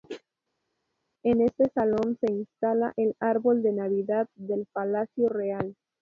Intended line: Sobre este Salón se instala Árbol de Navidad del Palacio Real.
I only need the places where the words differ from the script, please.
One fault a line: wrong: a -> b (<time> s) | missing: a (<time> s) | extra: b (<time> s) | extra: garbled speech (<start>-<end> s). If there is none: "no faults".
wrong: Sobre -> En (1.2 s)
extra: el (3.0 s)